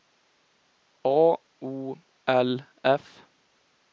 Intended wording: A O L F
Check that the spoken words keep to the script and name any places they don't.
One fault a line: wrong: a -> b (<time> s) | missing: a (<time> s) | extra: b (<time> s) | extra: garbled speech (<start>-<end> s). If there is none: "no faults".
no faults